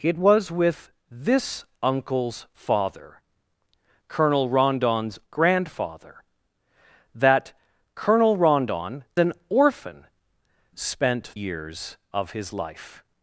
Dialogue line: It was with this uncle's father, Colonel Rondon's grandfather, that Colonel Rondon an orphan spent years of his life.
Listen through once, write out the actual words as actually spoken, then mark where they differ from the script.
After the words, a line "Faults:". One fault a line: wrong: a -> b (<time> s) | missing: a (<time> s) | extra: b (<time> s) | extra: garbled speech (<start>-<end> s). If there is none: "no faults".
It was with this uncle's father, Colonel Rondon's grandfather, that Colonel Rondon an orphan spent years of his life.
Faults:
no faults